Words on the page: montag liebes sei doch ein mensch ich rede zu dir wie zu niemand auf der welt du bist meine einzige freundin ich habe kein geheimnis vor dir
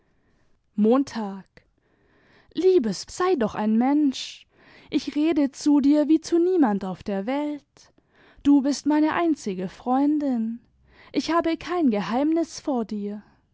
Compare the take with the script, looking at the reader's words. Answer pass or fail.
pass